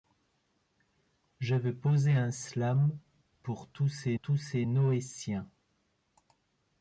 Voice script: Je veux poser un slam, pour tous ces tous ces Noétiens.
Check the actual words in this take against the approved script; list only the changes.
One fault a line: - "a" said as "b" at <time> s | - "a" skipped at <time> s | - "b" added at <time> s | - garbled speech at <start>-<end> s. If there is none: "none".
none